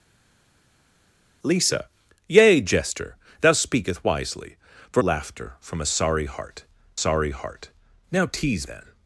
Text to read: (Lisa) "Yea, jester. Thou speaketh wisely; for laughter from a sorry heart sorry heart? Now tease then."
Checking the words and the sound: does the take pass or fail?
pass